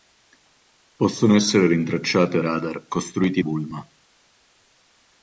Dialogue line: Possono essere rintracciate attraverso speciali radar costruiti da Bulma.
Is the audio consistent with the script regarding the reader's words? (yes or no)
no